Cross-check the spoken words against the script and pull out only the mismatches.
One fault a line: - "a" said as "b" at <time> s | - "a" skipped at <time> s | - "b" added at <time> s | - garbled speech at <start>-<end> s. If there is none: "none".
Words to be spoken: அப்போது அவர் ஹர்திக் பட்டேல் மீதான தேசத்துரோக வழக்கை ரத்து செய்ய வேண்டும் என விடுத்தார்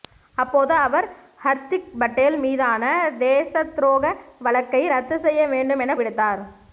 none